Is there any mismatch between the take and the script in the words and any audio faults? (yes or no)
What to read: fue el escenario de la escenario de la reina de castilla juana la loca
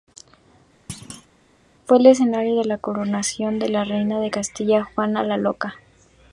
yes